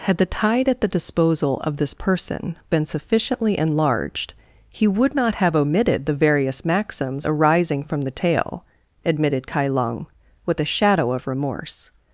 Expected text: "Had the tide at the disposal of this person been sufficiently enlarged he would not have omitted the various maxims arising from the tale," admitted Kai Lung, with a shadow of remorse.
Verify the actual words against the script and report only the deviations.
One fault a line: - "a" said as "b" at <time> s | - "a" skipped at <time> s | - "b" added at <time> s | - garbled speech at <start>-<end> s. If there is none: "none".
none